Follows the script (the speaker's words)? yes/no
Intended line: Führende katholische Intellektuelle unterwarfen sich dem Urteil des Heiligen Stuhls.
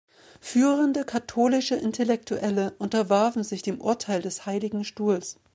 yes